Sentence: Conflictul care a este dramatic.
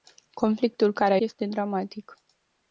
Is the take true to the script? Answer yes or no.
yes